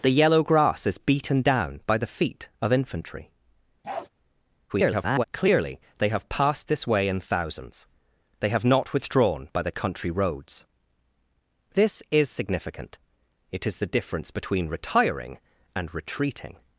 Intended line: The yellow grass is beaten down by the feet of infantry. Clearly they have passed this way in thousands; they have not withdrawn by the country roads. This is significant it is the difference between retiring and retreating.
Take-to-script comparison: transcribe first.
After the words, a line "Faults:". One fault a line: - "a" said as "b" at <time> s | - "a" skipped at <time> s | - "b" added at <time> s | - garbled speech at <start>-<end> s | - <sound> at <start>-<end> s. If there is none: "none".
The yellow grass is beaten down by the feet of infantry. [garbled] Clearly they have passed this way in thousands; they have not withdrawn by the country roads. This is significant it is the difference between retiring and retreating.
Faults:
- bark at 3.8-4.1 s
- garbled speech at 4.7-5.2 s